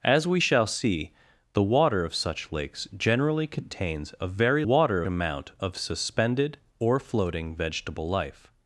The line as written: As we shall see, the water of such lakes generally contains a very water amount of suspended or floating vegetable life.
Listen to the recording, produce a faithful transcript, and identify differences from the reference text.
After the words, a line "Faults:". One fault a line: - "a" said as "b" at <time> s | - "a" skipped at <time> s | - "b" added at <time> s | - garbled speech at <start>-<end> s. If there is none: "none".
As we shall see, the water of such lakes generally contains a very water amount of suspended or floating vegetable life.
Faults:
none